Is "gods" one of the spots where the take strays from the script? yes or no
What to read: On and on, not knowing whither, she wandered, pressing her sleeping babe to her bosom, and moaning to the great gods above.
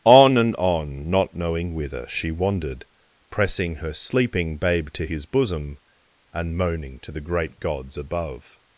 no